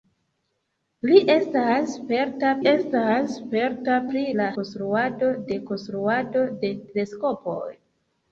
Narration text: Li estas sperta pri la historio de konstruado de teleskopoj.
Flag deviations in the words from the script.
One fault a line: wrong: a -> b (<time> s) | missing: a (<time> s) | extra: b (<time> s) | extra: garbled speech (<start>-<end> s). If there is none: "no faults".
extra: estas sperta (2.7 s)
wrong: historio -> konstruado (4.6 s)